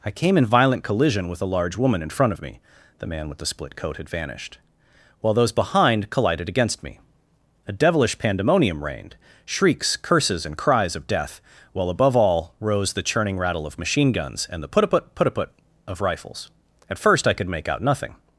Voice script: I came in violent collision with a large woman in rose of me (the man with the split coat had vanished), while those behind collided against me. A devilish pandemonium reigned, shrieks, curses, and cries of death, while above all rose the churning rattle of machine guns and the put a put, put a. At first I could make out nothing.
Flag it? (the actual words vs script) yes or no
yes